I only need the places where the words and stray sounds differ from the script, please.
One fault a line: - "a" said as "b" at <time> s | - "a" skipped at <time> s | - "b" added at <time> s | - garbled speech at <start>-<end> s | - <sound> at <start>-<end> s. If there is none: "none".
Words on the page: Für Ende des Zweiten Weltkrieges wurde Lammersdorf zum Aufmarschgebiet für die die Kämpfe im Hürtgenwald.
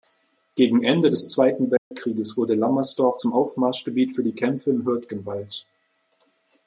- "Für" said as "Gegen" at 0.6 s
- dropout at 1.8-1.9 s
- "die" skipped at 4.3 s